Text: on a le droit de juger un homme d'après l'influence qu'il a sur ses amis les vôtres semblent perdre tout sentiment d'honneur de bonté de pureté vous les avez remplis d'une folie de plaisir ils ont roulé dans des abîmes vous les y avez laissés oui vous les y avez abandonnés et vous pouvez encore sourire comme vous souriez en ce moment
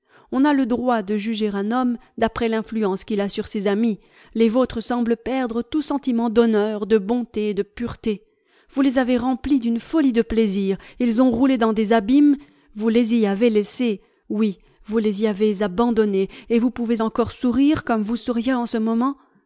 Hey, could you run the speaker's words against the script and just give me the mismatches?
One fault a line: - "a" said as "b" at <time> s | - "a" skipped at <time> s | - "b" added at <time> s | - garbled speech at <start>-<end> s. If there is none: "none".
none